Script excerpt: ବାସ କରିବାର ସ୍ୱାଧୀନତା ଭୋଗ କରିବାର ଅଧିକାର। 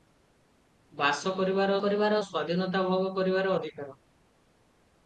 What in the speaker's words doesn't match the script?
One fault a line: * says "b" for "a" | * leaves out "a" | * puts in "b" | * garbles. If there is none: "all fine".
* puts in "କରିବାର"